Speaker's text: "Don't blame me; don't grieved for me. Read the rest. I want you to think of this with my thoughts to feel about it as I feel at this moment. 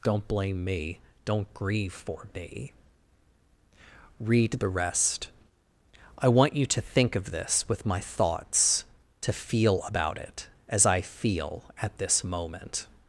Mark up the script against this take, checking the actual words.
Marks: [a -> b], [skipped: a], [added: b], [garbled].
"Don't blame me; don't [grieved -> grieve] for me. Read the rest. I want you to think of this with my thoughts to feel about it as I feel at this moment.